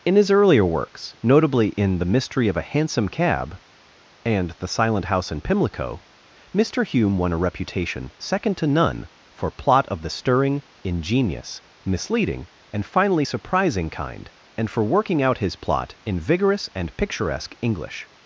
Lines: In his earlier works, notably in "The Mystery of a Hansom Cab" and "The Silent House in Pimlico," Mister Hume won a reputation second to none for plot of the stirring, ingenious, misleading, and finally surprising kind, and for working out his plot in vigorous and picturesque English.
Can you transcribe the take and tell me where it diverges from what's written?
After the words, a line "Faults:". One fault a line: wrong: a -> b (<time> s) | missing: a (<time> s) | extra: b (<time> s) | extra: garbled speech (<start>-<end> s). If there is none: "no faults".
In his earlier works, notably in "The Mystery of a Hansom Cab" and "The Silent House in Pimlico," Mister Hume won a reputation second to none for plot of the stirring, ingenious, misleading, and finally surprising kind, and for working out his plot in vigorous and picturesque English.
Faults:
no faults